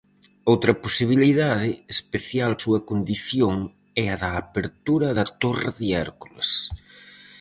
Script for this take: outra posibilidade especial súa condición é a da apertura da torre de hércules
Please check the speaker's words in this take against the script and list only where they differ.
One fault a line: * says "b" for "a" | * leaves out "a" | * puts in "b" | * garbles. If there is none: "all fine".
all fine